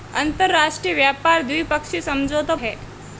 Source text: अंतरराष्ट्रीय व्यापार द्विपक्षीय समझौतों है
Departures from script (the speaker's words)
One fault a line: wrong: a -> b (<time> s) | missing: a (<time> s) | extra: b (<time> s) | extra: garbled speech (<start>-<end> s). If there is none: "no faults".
no faults